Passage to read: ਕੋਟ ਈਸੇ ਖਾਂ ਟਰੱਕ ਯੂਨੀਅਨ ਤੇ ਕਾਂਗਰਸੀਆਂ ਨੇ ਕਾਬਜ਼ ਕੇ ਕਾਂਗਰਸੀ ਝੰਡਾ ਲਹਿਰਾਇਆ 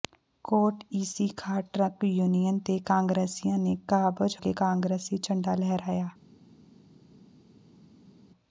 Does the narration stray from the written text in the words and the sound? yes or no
no